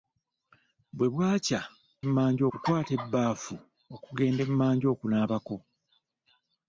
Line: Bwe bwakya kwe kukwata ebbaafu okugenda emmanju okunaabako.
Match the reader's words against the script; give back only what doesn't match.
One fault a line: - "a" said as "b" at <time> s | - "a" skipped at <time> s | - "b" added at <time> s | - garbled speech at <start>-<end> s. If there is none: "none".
- "kwe" said as "emmanju" at 2.0 s